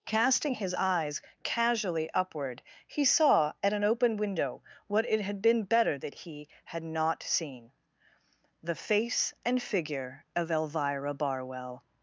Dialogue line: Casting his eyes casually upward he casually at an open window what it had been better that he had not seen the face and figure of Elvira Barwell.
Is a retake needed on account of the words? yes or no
yes